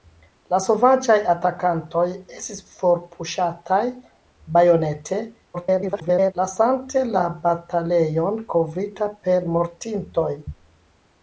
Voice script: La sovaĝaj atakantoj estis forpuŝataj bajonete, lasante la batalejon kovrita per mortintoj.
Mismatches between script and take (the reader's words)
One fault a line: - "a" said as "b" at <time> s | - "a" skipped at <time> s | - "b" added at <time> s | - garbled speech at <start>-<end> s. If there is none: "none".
- garbled speech at 5.5-6.3 s